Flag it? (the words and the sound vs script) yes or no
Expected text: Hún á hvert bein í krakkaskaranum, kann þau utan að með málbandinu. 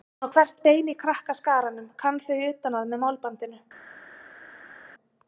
no